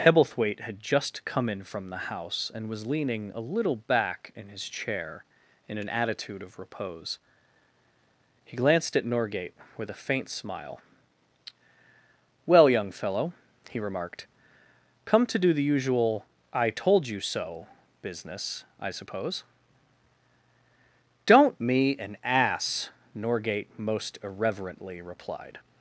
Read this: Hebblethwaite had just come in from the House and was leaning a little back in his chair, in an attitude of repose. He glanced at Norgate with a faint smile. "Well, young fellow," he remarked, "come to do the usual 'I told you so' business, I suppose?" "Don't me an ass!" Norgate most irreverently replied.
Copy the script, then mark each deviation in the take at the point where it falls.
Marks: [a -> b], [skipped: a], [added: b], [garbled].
Hebblethwaite had just come in from the House and was leaning a little back in his chair, in an attitude of repose. He glanced at Norgate with a faint smile. "Well, young fellow," he remarked, "come to do the usual 'I told you so' business, I suppose?" "Don't me an ass!" Norgate most irreverently replied.